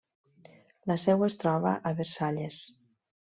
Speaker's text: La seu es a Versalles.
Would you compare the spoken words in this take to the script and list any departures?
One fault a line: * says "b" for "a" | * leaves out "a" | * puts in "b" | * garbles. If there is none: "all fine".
* puts in "troba"